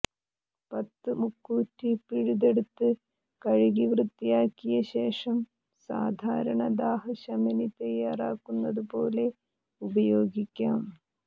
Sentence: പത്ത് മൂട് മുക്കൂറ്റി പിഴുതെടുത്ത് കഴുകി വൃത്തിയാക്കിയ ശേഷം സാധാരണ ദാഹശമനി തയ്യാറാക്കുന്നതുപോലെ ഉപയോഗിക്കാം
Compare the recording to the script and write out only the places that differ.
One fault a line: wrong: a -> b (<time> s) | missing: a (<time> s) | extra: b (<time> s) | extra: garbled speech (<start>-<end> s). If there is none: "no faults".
missing: മൂട് (1.1 s)